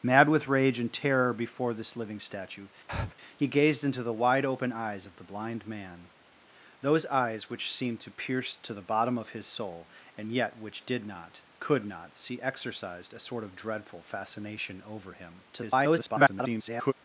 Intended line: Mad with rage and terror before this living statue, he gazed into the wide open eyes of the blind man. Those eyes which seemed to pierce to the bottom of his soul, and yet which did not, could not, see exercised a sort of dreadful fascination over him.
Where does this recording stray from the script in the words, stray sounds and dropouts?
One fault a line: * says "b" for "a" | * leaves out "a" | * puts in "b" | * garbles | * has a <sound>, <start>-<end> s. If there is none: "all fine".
* has a breath, 2.9-3.1 s
* garbles